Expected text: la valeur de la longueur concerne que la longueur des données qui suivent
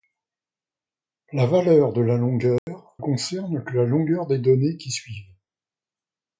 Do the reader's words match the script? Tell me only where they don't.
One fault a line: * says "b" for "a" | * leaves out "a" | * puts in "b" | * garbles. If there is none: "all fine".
all fine